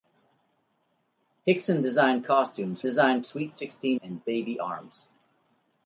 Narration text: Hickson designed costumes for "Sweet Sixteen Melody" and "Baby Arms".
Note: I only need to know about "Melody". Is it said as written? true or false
false